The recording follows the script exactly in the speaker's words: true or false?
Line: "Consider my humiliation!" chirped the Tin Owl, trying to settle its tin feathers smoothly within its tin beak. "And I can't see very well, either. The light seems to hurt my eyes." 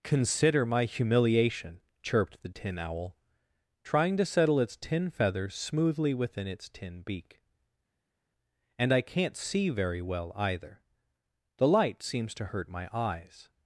true